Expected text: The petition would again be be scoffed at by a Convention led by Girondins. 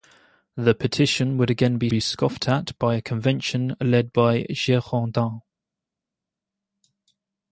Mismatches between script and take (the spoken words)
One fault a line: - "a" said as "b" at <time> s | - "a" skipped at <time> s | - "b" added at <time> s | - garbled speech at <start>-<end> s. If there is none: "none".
none